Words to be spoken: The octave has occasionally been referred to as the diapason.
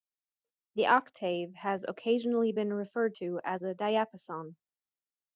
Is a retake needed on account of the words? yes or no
yes